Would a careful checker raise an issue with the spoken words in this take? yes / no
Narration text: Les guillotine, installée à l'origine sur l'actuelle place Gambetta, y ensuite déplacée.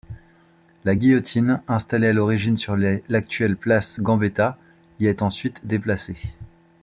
yes